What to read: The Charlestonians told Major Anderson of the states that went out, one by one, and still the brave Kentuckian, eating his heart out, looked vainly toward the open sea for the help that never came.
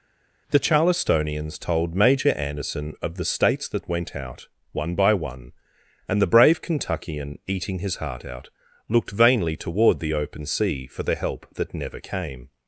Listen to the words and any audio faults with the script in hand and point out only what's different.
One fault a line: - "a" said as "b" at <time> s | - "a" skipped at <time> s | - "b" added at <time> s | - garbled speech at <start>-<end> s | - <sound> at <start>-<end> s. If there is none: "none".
- "still" skipped at 6.2 s